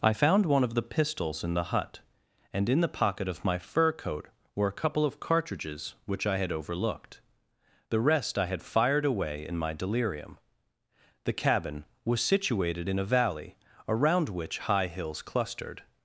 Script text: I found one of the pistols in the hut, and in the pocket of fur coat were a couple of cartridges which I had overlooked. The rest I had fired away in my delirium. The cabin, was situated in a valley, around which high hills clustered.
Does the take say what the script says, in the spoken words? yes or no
no